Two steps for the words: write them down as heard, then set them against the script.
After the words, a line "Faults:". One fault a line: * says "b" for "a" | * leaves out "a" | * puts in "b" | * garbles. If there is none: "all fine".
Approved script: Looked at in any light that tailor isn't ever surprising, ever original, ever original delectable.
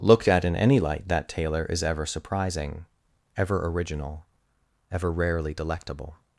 Looked at in any light that tailor is ever surprising, ever original, ever rarely delectable.
Faults:
* says "is" for "isn't"
* says "rarely" for "original"